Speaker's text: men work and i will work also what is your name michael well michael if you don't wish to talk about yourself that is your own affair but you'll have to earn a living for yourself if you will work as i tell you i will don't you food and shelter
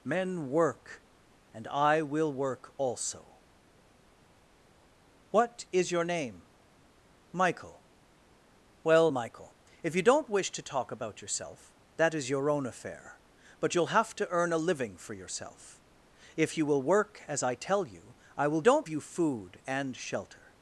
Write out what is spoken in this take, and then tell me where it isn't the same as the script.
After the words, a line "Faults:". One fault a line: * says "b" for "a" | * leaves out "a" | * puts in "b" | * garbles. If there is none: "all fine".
men work and i will work also what is your name michael well michael if you don't wish to talk about yourself that is your own affair but you'll have to earn a living for yourself if you will work as i tell you i will don't you food and shelter
Faults:
all fine